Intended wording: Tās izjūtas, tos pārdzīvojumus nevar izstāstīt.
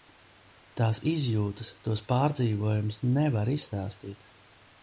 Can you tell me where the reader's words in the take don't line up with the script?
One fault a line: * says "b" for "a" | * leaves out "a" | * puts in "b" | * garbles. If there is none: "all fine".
all fine